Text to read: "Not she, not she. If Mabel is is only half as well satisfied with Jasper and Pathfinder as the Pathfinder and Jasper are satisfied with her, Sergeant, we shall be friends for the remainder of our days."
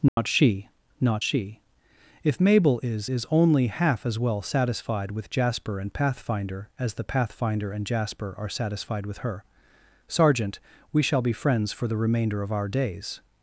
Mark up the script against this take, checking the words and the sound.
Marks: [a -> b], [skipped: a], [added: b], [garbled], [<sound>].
"Not [dropout] she, not she. If Mabel is is only half as well satisfied with Jasper and Pathfinder as the Pathfinder and Jasper are satisfied with her, Sergeant, we shall be friends for the remainder of our days."